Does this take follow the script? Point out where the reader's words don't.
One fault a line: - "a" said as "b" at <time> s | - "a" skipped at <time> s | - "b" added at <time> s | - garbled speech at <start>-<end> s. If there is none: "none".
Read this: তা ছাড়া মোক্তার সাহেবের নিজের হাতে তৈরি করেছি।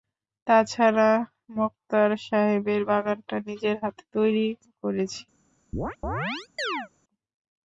- "বাগানটা" added at 2.8 s